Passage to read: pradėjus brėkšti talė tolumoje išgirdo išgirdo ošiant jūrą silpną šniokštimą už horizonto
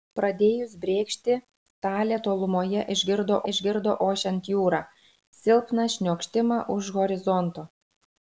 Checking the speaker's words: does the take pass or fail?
pass